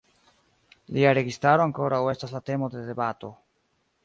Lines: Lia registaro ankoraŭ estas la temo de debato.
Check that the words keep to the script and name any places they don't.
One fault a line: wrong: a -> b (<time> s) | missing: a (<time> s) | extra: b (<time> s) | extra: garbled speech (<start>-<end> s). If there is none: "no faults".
no faults